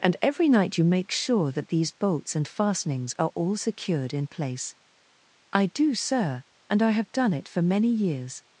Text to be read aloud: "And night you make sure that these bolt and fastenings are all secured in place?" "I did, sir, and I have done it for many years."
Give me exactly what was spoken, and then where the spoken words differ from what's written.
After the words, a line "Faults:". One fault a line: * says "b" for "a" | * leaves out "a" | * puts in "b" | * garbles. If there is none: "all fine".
"And every night you make sure that these bolts and fastenings are all secured in place?" "I do, sir, and I have done it for many years."
Faults:
* puts in "every"
* says "bolts" for "bolt"
* says "do" for "did"